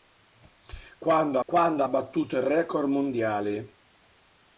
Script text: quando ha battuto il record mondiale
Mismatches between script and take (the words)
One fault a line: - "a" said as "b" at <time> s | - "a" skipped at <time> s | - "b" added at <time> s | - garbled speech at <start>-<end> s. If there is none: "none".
- "quando" added at 1.4 s